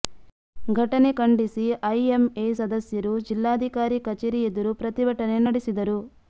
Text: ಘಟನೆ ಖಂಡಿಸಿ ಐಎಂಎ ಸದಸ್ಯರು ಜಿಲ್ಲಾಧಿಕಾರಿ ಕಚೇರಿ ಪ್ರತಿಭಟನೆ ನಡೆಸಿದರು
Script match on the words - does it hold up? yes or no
no